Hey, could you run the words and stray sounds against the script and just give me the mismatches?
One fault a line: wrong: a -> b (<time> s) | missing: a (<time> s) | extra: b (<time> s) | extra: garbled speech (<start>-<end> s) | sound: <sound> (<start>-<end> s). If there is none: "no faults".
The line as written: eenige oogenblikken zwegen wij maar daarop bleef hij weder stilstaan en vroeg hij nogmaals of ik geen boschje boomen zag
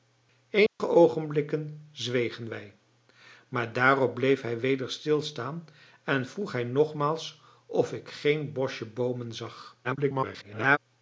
sound: dropout (0.7-0.8 s)
extra: garbled speech (9.8-10.8 s)